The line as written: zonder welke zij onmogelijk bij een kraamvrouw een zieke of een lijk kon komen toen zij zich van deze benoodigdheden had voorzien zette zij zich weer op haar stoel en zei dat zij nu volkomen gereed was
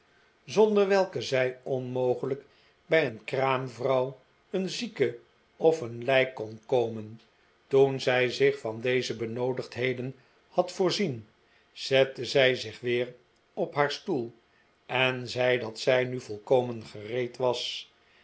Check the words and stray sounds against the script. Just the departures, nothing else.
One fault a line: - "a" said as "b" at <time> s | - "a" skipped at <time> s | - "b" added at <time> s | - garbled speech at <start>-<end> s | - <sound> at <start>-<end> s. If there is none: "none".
none